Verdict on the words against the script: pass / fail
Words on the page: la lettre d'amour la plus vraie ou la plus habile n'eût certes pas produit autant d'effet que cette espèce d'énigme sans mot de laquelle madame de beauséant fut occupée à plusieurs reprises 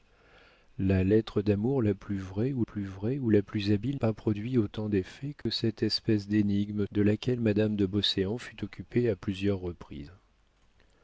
fail